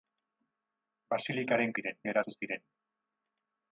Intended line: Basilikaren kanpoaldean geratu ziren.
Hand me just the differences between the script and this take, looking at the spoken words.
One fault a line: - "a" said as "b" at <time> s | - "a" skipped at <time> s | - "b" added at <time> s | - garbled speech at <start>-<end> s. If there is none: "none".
- "kanpoaldean" said as "ziren" at 1.7 s